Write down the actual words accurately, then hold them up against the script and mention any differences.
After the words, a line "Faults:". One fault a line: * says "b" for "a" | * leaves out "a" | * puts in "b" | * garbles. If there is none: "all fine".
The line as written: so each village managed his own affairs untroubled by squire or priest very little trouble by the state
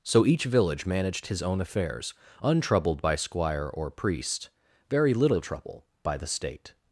so each village managed his own affairs untroubled by squire or priest very little trouble by the state
Faults:
all fine